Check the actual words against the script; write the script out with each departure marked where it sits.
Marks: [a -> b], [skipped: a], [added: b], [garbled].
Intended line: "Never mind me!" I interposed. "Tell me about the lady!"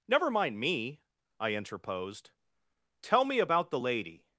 "Never mind me!" I interposed. "Tell me about the lady!"